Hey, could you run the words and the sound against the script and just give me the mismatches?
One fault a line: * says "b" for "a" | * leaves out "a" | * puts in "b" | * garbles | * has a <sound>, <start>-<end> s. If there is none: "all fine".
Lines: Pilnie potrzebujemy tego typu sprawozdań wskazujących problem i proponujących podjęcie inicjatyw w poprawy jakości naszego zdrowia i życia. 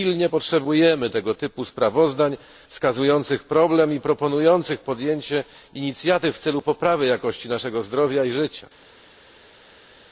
* puts in "celu"